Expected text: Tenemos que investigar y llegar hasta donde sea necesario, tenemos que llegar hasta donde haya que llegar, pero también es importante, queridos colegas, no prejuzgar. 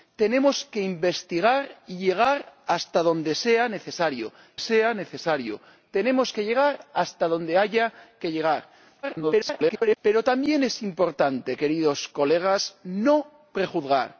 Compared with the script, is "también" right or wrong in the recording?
right